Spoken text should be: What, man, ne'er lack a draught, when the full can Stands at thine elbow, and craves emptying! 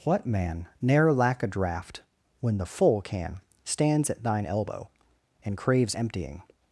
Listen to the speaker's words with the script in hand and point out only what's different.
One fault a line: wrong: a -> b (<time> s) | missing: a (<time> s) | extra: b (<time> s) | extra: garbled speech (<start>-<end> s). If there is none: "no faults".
no faults